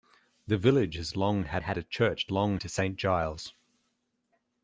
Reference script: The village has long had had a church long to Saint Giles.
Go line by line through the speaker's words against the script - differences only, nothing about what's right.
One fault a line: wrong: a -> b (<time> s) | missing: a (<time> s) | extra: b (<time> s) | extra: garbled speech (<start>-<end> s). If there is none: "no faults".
no faults